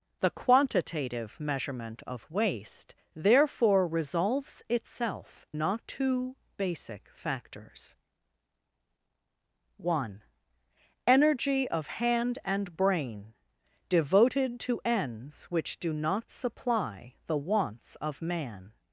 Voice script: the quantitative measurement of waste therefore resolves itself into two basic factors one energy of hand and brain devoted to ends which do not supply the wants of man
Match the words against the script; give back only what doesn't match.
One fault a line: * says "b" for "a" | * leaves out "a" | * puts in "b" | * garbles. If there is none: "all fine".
* says "not" for "into"